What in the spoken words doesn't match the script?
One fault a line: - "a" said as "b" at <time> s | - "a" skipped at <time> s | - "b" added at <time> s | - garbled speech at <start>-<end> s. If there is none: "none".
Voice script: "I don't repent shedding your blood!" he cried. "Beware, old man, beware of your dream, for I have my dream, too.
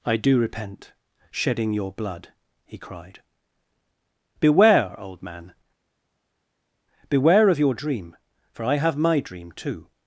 - "don't" said as "do" at 0.2 s